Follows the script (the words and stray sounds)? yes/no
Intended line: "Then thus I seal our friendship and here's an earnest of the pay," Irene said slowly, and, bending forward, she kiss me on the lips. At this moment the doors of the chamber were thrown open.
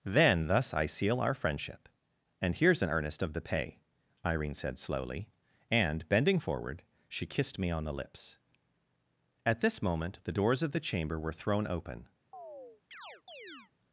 no